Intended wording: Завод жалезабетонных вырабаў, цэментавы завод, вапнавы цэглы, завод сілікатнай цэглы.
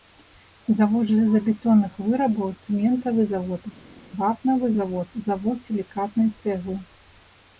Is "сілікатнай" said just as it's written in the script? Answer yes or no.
yes